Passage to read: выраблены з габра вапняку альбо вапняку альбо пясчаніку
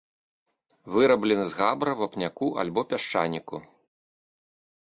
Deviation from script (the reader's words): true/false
true